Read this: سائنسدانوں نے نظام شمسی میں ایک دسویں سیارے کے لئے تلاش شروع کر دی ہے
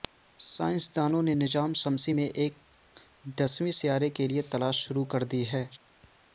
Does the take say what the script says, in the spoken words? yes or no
yes